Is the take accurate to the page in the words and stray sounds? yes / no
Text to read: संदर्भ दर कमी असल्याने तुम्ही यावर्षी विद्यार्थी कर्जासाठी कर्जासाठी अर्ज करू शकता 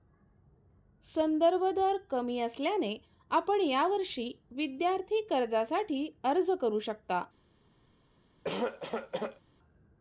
no